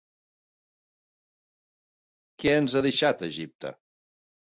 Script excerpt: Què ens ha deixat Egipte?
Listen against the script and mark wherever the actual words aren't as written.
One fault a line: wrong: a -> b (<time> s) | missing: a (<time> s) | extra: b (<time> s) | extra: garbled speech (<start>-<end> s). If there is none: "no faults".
no faults